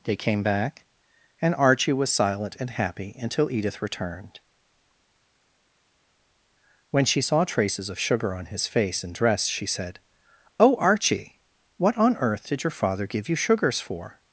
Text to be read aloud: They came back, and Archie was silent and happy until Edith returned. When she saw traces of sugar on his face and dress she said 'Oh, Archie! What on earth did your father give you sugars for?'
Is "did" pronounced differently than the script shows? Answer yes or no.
no